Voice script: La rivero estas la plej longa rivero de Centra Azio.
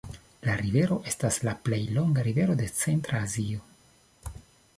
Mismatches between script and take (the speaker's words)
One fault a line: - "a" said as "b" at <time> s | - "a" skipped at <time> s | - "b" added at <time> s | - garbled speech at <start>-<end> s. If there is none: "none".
none